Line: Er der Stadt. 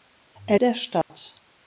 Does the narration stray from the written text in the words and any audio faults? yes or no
yes